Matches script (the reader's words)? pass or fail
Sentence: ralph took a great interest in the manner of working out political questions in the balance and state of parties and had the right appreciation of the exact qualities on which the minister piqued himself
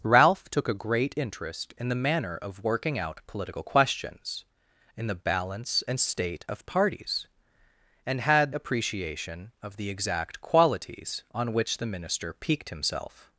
fail